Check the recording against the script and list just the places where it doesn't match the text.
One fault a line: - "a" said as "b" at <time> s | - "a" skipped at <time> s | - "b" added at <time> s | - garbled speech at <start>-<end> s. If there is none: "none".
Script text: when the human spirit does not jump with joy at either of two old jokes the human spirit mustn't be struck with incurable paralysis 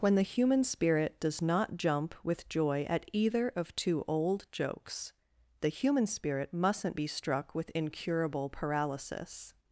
none